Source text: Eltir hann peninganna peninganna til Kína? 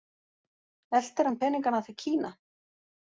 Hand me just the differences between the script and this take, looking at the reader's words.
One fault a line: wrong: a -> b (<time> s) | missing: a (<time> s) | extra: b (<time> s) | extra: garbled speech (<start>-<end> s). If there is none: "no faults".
missing: peninganna (1.8 s)